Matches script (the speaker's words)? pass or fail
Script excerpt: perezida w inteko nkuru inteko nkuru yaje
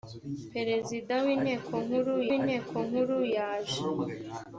pass